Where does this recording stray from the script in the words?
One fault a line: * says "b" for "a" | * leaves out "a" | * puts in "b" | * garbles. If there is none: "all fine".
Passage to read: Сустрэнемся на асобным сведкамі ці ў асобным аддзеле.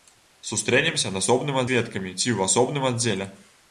all fine